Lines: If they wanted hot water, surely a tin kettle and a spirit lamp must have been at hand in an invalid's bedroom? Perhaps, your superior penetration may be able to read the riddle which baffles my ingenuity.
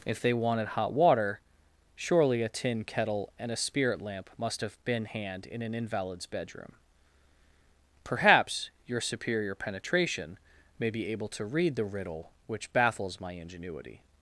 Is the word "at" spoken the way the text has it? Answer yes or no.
no